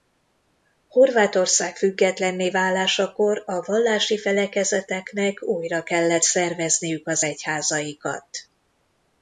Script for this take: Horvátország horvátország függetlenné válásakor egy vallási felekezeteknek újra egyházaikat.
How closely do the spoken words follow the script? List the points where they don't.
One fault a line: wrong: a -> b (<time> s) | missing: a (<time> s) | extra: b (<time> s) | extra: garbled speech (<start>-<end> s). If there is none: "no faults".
missing: horvátország (1.8 s)
wrong: egy -> a (3.5 s)
extra: kellett szervezniük az (5.8 s)